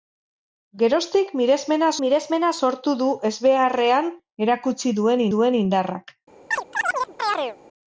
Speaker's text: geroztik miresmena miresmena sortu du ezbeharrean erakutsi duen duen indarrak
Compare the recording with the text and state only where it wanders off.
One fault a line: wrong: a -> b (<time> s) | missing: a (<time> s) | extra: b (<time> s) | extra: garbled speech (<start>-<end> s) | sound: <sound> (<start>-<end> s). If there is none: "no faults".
sound: chirp (6.5-7.6 s)